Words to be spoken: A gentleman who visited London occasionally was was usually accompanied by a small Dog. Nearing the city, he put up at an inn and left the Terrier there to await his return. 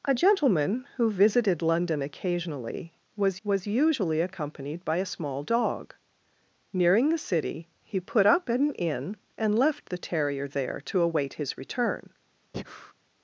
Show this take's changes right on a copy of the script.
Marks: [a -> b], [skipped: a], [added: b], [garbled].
A gentleman who visited London occasionally was was usually accompanied by a small Dog. Nearing the city, he put up at an inn and left the Terrier there to await his return.